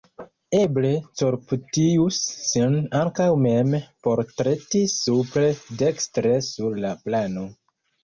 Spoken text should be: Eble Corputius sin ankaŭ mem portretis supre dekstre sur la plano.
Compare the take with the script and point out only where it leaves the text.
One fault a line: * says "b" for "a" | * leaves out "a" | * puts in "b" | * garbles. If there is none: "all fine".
all fine